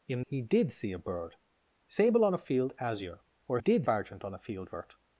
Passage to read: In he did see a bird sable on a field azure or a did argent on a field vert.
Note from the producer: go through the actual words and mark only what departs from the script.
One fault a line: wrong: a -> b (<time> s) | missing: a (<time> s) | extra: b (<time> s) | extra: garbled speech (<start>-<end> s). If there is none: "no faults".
no faults